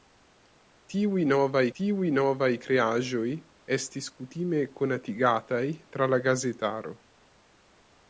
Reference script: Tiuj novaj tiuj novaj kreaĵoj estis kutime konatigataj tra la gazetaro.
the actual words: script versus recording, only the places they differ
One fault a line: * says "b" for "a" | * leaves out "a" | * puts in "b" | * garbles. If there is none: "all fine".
all fine